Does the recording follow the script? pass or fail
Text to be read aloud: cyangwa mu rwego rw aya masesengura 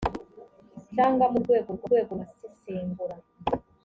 fail